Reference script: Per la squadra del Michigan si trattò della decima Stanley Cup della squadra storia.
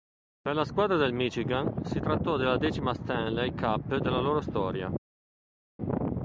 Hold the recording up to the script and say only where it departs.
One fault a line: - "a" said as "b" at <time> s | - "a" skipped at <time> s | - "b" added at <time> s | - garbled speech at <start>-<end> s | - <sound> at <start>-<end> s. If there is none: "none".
- "squadra" said as "loro" at 4.2 s